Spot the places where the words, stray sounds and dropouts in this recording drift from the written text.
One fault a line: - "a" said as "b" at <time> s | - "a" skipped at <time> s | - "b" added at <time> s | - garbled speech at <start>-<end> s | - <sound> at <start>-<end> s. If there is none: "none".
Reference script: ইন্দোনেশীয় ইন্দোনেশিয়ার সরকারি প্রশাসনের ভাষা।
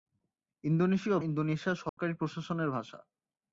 - dropout at 1.9-2.0 s